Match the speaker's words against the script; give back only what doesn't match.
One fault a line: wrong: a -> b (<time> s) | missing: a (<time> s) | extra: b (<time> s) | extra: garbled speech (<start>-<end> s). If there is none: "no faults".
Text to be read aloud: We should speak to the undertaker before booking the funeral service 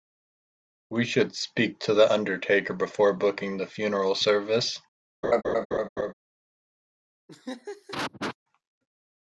no faults